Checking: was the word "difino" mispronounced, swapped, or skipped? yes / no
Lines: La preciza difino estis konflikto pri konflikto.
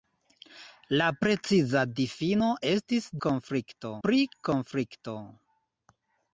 no